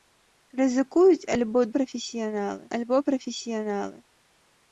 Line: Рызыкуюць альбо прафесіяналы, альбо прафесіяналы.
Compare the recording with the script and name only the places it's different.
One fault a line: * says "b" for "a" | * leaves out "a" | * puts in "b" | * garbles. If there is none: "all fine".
all fine